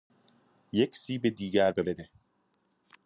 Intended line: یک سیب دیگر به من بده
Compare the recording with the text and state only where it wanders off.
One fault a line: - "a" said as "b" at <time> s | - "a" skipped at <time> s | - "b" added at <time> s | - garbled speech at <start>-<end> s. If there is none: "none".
- "من" skipped at 1.8 s